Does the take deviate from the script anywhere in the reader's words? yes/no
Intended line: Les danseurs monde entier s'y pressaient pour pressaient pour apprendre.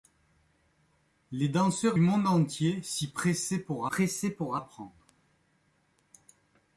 no